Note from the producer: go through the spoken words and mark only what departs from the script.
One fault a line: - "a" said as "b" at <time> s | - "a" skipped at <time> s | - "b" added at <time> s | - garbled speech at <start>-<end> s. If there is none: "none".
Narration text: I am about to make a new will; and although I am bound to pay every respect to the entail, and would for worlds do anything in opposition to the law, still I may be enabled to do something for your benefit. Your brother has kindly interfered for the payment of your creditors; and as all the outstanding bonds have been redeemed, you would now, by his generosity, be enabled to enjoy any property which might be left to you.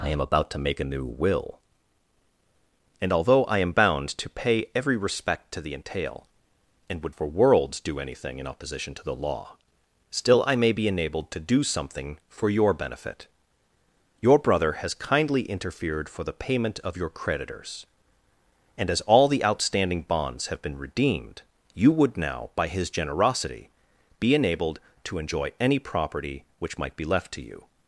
none